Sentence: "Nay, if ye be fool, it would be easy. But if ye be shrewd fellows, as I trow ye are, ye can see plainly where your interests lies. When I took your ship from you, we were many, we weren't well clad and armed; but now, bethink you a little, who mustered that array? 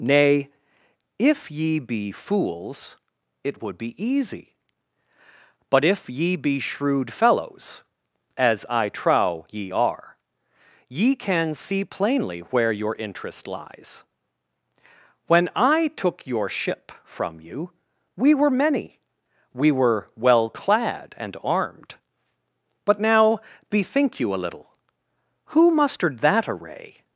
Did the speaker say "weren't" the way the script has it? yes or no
no